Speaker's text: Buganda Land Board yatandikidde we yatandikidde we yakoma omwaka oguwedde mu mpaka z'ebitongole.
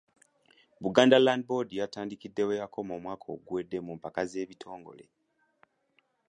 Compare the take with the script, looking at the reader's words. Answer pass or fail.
fail